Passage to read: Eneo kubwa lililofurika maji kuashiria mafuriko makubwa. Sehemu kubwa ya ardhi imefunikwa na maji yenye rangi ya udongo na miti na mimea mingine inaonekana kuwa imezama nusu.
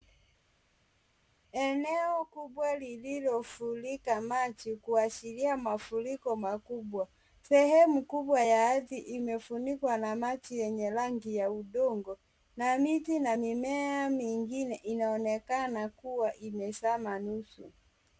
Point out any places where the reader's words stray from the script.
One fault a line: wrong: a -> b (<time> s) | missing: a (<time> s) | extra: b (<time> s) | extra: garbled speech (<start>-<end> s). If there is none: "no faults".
no faults